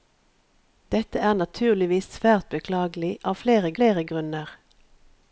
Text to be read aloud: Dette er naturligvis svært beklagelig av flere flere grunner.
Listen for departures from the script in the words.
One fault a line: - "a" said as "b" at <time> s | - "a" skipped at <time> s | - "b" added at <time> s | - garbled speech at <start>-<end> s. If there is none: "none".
none